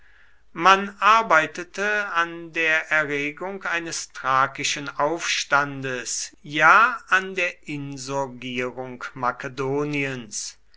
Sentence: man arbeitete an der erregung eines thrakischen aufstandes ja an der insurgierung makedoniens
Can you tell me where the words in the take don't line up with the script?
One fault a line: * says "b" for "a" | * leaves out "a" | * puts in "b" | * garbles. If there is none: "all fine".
all fine